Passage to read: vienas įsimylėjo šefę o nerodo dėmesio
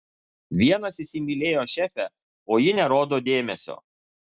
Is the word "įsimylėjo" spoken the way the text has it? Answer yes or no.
yes